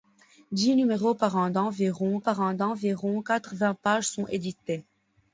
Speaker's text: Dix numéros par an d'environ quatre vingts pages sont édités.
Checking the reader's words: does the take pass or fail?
fail